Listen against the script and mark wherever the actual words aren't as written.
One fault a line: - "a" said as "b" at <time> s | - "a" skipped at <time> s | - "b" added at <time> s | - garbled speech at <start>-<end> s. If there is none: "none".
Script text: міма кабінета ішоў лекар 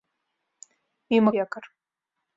- "кабінета ішоў" skipped at 1.3 s